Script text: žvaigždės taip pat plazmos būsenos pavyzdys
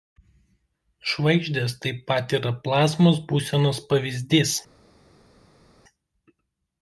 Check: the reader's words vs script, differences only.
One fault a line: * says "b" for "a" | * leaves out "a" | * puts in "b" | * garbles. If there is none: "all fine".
* puts in "yra"